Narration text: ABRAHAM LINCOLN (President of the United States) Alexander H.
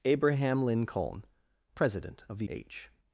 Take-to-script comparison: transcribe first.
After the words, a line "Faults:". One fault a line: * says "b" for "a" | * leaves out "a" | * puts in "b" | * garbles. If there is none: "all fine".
ABRAHAM LINCOLN (President of the H.
Faults:
* leaves out "United States Alexander"